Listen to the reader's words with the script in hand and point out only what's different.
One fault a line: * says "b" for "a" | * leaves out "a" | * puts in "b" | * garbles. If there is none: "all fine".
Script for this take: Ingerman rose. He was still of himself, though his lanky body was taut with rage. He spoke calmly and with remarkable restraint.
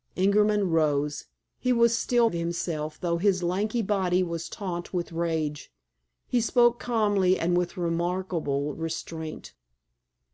all fine